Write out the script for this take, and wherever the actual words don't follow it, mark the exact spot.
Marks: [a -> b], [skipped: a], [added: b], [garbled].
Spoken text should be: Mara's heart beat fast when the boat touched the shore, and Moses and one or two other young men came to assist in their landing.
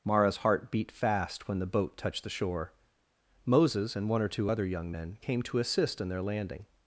Mara's heart beat fast when the boat touched the shore, [skipped: and] Moses and one or two other young men came to assist in their landing.